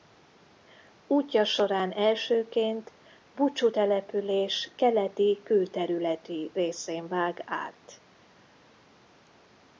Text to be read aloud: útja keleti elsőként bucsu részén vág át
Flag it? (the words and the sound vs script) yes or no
yes